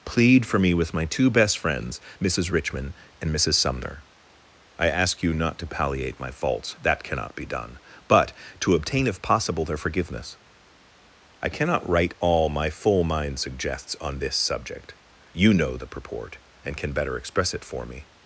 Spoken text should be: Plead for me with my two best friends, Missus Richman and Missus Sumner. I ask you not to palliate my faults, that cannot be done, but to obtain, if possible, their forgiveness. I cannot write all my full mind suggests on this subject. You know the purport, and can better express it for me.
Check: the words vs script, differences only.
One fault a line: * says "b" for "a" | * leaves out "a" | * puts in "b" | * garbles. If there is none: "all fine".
all fine